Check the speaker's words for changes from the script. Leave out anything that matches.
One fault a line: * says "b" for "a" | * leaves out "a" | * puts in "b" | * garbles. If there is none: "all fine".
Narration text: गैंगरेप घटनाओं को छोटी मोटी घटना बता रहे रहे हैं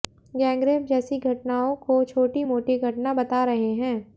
* puts in "जैसी"
* leaves out "रहे"